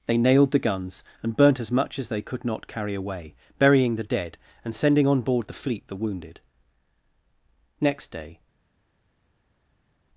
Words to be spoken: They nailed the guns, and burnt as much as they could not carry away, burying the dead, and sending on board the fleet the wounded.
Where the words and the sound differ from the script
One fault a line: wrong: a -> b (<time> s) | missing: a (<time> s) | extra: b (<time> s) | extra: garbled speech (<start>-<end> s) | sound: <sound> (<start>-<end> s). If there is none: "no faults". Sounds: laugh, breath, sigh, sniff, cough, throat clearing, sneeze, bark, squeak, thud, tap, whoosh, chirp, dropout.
extra: Next day (7.8 s)